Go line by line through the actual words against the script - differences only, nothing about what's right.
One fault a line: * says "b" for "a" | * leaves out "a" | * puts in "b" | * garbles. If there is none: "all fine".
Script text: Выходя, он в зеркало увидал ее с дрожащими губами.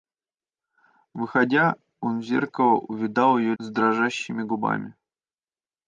all fine